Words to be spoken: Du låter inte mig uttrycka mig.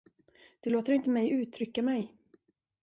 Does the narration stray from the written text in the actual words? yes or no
no